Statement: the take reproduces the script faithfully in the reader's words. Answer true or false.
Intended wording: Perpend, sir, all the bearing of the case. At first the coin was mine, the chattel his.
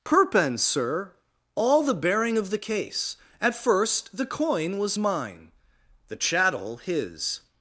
true